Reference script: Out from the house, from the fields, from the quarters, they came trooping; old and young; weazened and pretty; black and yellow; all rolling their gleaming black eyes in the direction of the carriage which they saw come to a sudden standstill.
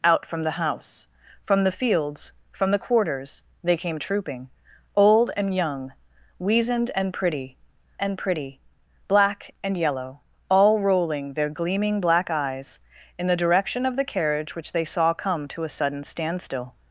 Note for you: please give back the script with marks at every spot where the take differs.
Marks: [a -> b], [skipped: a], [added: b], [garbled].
Out from the house, from the fields, from the quarters, they came trooping; old and young; weazened and pretty; [added: and pretty] black and yellow; all rolling their gleaming black eyes in the direction of the carriage which they saw come to a sudden standstill.